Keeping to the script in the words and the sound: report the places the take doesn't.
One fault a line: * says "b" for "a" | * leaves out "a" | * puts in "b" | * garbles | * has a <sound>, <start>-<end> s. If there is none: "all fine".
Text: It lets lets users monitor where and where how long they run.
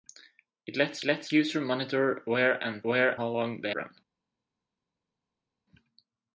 all fine